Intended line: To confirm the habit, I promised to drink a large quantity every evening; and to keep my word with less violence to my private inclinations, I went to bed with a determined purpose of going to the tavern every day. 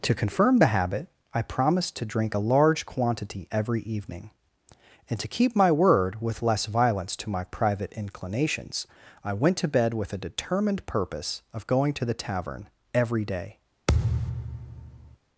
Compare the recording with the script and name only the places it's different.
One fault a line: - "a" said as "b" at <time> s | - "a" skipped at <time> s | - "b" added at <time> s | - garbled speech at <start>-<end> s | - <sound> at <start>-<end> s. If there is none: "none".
- thud at 13.9-15.2 s